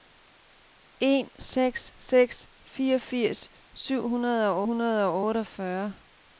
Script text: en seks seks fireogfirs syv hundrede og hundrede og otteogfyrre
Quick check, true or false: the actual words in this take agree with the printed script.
true